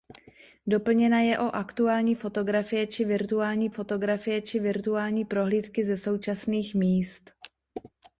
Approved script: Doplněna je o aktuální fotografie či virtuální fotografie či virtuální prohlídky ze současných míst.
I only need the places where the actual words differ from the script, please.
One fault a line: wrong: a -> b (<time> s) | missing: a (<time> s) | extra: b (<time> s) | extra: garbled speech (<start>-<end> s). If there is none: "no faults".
no faults